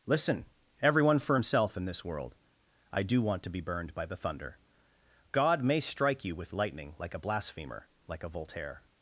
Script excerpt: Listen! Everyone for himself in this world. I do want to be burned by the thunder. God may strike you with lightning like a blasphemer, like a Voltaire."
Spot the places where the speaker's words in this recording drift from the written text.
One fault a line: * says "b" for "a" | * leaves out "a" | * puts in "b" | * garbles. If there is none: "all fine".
all fine